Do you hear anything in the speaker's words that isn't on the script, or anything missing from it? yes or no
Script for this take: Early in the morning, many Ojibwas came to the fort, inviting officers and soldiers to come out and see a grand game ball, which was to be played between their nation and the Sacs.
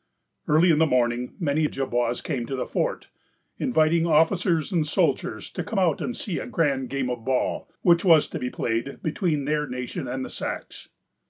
yes